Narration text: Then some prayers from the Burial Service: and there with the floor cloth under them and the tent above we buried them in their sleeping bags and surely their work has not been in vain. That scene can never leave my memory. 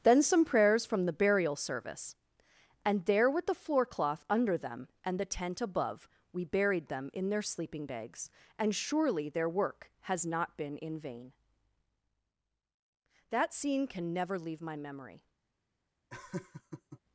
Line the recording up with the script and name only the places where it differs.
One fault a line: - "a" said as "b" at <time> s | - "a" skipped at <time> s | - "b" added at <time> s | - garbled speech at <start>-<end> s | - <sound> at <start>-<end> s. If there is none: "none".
- laugh at 16.1-17.0 s